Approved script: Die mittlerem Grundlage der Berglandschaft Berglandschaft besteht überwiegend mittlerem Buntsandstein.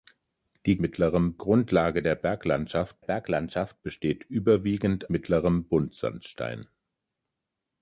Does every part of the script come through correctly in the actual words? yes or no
yes